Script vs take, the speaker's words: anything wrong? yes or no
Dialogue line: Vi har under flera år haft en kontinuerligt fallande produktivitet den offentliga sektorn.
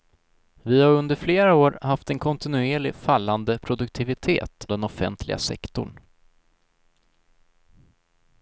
no